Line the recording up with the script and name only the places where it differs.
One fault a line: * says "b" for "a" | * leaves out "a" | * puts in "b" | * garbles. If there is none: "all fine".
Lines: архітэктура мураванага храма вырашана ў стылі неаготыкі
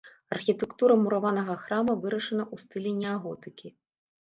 all fine